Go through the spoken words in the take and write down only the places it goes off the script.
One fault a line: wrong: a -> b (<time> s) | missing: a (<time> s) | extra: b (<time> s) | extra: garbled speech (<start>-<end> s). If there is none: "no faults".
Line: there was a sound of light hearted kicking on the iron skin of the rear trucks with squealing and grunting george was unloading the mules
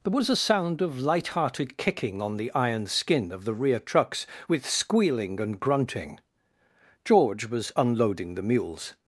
no faults